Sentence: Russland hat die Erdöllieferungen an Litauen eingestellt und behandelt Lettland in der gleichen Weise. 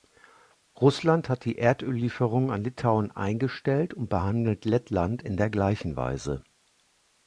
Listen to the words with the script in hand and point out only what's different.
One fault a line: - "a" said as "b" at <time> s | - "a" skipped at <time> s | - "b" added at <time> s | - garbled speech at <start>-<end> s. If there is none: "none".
none